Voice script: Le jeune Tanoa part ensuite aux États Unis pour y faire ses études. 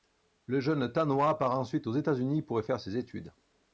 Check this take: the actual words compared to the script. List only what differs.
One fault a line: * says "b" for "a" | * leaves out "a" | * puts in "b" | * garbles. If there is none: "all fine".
all fine